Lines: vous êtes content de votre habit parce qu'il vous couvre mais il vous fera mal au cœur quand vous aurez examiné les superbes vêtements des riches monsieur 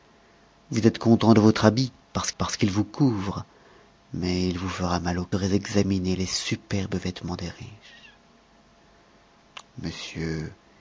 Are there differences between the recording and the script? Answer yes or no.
yes